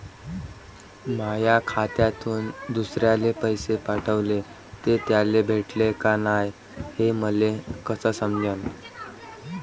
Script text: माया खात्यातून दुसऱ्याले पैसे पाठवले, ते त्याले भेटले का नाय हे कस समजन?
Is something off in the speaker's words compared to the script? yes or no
yes